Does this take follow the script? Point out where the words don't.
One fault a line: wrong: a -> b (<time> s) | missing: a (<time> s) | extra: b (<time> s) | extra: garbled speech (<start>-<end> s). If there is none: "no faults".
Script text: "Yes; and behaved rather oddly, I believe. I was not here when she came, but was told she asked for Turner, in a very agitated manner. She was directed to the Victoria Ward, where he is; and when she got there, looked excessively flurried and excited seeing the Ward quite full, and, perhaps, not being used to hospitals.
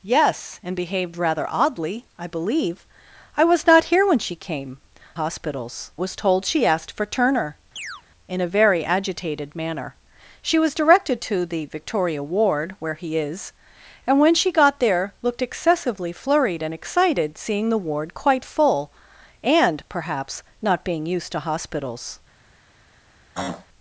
wrong: but -> hospitals (5.1 s)